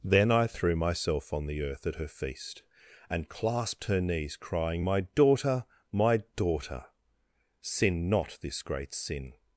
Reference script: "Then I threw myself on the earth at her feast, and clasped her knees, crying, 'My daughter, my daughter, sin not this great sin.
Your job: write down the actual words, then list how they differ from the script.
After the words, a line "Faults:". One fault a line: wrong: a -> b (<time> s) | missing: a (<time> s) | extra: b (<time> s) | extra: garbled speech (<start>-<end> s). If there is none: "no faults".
"Then I threw myself on the earth at her feast, and clasped her knees, crying, 'My daughter, my daughter, sin not this great sin.
Faults:
no faults